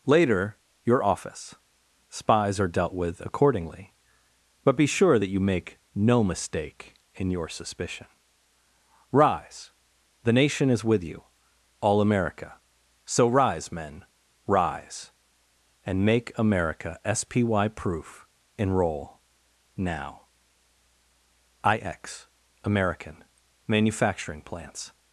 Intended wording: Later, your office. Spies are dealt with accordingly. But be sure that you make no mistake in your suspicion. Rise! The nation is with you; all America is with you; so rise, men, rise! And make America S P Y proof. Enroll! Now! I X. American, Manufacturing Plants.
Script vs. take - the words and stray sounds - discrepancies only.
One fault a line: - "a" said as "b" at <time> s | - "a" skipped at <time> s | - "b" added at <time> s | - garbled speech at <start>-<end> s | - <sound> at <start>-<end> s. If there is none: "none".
- "is with you" skipped at 12.6 s